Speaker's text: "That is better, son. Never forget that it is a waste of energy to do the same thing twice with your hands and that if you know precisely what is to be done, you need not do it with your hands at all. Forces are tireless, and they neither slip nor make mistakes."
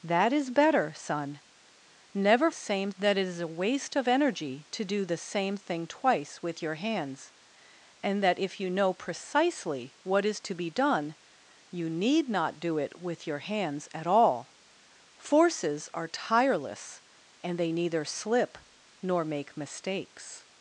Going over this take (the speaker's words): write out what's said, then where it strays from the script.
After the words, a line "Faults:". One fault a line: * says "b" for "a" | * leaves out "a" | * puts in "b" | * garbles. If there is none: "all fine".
"That is better, son. Never same that it is a waste of energy to do the same thing twice with your hands and that if you know precisely what is to be done, you need not do it with your hands at all. Forces are tireless, and they neither slip nor make mistakes."
Faults:
* says "same" for "forget"